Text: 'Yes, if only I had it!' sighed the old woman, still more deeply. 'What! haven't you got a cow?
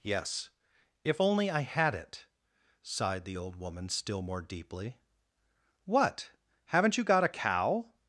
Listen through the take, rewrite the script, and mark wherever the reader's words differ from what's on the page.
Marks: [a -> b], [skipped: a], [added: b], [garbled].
'Yes, if only I had it!' sighed the old woman, still more deeply. 'What! haven't you got a cow?